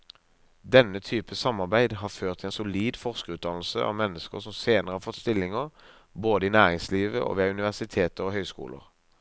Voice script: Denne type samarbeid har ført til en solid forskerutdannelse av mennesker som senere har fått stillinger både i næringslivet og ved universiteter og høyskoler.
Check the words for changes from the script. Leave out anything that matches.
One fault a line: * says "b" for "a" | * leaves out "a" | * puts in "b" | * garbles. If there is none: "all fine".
all fine